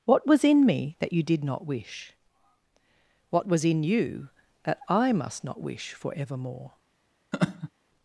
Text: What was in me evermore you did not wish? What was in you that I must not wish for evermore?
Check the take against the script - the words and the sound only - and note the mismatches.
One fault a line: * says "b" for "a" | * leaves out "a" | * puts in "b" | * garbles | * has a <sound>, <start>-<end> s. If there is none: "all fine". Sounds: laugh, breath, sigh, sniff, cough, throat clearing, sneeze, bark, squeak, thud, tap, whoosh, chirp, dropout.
* says "that" for "evermore"
* has a laugh, 7.3-7.7 s